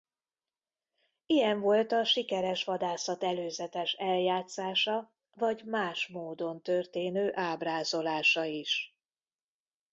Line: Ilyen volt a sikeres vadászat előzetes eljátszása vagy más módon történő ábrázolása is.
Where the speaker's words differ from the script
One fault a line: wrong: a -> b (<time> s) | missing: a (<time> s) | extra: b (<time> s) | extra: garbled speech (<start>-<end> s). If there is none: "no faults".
no faults